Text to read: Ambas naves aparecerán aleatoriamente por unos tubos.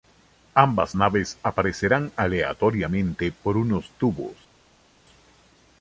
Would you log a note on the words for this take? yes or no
no